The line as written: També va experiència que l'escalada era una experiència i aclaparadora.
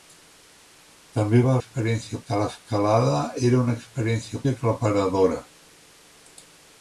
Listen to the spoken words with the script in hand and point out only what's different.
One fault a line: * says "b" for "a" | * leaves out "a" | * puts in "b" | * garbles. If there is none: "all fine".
all fine